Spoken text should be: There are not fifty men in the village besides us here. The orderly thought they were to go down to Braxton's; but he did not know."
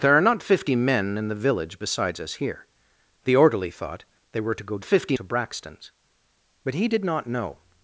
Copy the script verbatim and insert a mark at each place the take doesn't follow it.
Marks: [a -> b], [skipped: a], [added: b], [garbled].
There are not fifty men in the village besides us here. The orderly thought they were to go [down -> fifty] to Braxton's; but he did not know."